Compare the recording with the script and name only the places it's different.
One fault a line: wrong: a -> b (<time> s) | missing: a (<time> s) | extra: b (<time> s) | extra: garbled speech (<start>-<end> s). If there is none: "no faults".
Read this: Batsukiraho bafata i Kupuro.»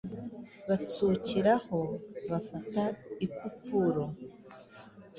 no faults